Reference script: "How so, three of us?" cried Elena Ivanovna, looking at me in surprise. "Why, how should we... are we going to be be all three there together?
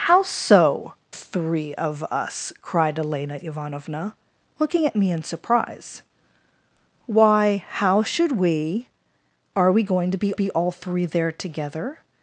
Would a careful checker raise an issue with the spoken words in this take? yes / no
no